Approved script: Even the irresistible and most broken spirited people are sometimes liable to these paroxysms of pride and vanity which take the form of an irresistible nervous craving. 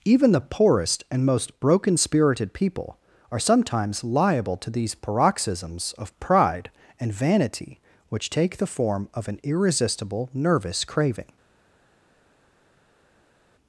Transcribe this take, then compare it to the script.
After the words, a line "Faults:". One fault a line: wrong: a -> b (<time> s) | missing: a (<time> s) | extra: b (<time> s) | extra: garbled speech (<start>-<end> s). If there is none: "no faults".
Even the poorest and most broken spirited people are sometimes liable to these paroxysms of pride and vanity which take the form of an irresistible nervous craving.
Faults:
wrong: irresistible -> poorest (0.4 s)